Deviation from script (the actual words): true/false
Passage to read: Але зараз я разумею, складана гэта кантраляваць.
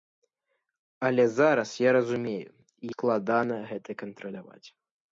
false